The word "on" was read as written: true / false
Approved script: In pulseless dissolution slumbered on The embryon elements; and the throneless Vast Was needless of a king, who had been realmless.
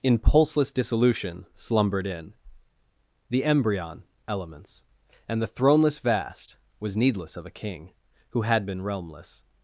false